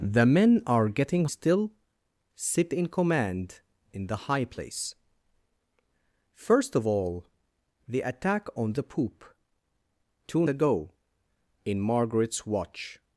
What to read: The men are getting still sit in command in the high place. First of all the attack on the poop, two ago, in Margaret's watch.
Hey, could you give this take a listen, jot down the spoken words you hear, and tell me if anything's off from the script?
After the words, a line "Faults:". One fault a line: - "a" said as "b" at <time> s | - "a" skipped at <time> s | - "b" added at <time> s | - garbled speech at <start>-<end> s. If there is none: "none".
The men are getting still sit in command in the high place. First of all the attack on the poop, two ago, in Margaret's watch.
Faults:
none